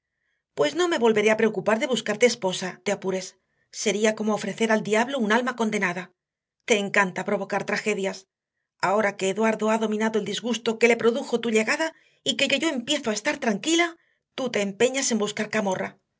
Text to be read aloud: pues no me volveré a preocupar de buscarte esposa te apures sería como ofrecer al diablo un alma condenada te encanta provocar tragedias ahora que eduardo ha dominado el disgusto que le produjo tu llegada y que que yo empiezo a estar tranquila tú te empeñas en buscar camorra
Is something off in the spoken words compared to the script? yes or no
no